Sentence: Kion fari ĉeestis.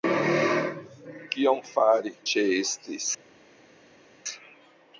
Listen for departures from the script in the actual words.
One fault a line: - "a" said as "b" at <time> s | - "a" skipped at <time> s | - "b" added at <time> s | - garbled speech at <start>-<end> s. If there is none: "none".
none